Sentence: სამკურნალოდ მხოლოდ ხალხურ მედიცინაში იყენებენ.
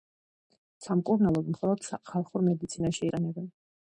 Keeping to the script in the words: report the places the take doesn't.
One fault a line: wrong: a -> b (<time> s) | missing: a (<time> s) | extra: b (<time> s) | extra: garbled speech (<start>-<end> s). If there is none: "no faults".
no faults